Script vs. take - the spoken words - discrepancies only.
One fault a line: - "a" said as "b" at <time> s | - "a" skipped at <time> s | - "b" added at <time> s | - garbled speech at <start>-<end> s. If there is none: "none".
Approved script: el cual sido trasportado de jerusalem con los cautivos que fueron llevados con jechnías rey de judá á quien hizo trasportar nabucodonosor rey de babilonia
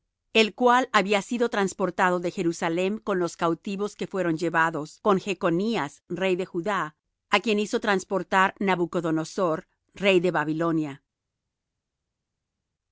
- "había" added at 0.9 s